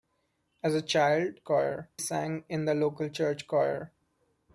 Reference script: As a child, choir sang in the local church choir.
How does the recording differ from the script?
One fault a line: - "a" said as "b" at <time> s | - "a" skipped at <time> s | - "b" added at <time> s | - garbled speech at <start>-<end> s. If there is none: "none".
none